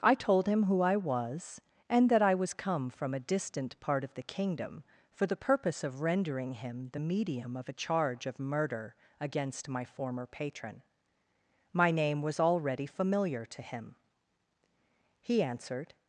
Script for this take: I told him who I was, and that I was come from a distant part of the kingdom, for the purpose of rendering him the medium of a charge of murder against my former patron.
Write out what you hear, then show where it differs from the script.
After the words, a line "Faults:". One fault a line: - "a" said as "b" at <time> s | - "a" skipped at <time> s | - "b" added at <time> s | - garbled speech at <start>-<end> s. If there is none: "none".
I told him who I was, and that I was come from a distant part of the kingdom, for the purpose of rendering him the medium of a charge of murder against my former patron. My name was already familiar to him. He answered
Faults:
- "My name was already familiar to him He answered" added at 11.7 s